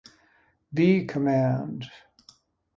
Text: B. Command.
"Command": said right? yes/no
yes